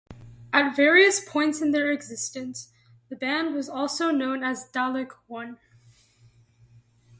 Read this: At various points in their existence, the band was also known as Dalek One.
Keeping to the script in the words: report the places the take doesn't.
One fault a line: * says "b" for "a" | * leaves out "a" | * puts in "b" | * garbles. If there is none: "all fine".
all fine